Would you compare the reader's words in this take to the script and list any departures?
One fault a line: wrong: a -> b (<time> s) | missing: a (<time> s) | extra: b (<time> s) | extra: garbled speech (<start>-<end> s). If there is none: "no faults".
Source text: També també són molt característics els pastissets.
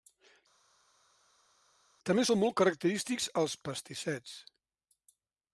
missing: també (2.2 s)